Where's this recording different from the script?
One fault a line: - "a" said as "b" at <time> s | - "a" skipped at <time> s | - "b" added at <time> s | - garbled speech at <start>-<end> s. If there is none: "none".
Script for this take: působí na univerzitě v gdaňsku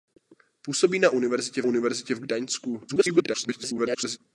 - "univerzitě" added at 1.6 s
- garbled speech at 2.9-4.2 s